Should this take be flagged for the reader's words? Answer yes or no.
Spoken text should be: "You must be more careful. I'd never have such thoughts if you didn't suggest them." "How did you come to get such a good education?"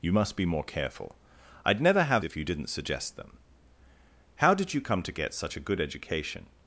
yes